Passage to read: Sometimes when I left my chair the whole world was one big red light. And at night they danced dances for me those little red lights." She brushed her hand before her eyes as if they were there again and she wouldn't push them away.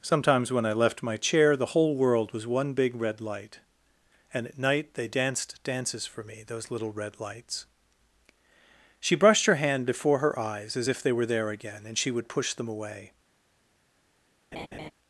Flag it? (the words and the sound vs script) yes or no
yes